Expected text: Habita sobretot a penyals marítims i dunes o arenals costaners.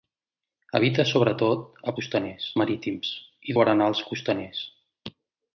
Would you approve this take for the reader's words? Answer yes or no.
no